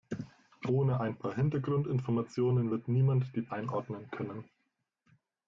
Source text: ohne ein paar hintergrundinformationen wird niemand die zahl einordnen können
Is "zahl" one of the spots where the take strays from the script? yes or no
yes